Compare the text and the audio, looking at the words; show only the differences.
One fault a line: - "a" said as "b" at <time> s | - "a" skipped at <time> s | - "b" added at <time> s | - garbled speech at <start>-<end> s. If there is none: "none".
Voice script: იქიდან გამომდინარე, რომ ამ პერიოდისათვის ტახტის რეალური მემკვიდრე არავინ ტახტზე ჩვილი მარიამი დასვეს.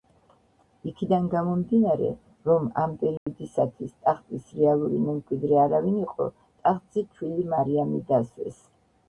- "იყო" added at 6.1 s